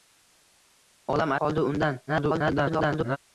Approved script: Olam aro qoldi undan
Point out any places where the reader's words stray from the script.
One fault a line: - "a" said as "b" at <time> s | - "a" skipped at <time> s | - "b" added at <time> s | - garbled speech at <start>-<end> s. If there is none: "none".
- "aro" skipped at 1.4 s
- garbled speech at 2.1-3.2 s